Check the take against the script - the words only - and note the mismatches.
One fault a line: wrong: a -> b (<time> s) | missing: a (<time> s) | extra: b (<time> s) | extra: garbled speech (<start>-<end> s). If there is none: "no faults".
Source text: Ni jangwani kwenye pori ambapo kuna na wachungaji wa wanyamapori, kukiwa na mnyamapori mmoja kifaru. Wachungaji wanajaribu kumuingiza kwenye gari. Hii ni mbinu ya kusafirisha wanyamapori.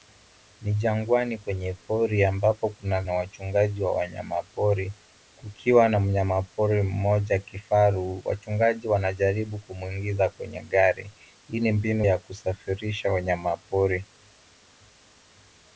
no faults